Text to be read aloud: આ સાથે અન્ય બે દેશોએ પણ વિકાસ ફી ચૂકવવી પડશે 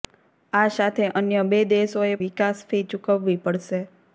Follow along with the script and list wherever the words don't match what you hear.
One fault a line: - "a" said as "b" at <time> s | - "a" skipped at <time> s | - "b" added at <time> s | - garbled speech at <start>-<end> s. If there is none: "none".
- "પણ" skipped at 2.1 s